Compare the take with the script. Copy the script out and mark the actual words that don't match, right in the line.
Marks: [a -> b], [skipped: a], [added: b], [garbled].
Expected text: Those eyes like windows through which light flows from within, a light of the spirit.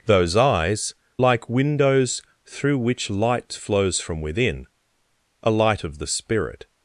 Those eyes like windows through which light flows from within, a light of the spirit.